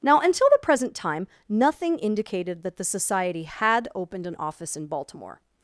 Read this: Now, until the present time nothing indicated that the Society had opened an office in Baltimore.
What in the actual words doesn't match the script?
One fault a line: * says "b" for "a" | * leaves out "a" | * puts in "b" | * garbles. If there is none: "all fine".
all fine